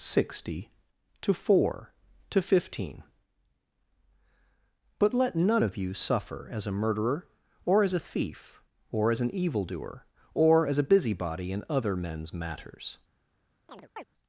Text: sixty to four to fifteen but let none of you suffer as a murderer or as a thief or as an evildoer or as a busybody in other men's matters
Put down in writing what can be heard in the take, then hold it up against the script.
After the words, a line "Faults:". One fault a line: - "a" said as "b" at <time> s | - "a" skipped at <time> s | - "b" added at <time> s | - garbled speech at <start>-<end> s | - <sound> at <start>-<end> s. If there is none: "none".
sixty to four to fifteen but let none of you suffer as a murderer or as a thief or as an evildoer or as a busybody in other men's matters
Faults:
- chirp at 13.7-14.0 s